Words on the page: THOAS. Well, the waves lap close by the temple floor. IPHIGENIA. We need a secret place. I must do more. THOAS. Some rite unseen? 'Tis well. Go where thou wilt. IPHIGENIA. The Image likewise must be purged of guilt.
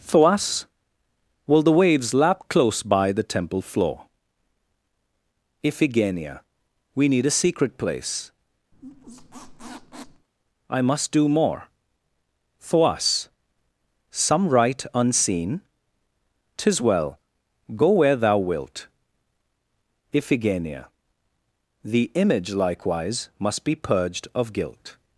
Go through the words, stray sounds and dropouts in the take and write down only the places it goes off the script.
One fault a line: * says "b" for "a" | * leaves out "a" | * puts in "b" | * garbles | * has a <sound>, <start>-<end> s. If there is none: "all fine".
* has a squeak, 8.7-10.3 s